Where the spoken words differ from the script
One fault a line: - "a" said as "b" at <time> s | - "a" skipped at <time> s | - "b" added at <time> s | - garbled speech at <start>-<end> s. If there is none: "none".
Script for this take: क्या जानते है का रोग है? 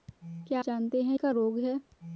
none